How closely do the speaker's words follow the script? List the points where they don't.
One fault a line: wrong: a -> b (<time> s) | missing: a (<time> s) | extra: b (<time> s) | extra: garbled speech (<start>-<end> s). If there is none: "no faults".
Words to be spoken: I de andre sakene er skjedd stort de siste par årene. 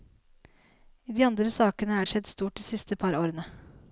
no faults